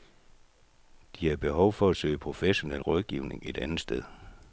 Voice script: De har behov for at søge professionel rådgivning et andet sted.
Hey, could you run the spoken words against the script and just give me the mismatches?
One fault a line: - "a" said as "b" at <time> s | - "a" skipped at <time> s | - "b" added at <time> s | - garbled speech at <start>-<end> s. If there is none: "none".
none